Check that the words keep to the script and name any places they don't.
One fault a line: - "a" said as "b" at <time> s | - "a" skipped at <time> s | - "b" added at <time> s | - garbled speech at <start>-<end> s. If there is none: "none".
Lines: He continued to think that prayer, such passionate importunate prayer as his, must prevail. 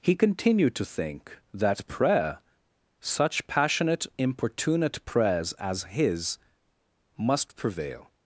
- "prayer" said as "prayers" at 5.0 s